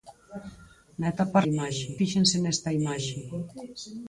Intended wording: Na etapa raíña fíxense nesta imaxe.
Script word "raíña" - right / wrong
wrong